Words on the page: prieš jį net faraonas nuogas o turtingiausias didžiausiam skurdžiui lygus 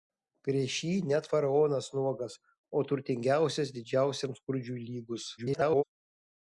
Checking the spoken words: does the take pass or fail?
fail